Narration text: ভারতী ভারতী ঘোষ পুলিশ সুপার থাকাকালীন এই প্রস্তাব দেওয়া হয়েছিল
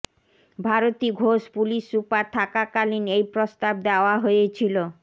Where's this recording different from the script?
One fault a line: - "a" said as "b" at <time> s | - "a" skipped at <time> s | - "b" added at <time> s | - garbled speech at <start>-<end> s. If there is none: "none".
- "ভারতী" skipped at 1.1 s